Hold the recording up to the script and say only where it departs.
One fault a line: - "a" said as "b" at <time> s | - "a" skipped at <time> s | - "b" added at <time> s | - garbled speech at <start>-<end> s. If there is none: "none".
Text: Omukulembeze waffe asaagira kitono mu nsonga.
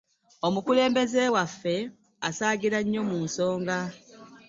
- "kitono" said as "nnyo" at 2.8 s